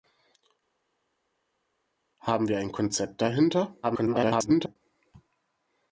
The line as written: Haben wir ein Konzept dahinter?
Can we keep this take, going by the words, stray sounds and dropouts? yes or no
no